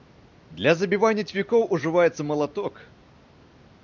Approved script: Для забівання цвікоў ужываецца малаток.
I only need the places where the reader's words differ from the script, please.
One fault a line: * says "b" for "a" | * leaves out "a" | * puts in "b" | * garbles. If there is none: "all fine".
all fine